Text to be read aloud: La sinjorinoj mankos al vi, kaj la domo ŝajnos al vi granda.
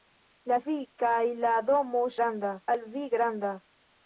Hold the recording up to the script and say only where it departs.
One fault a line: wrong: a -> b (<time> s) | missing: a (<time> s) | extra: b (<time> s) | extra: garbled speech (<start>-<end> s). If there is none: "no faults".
missing: sinjorinoj mankos al (0.6 s)
wrong: ŝajnos -> granda (2.2 s)